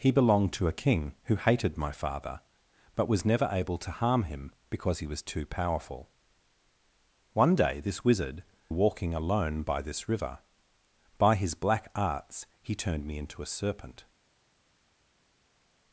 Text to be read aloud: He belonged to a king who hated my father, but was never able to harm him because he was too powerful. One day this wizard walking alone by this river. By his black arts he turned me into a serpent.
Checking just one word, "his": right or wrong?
right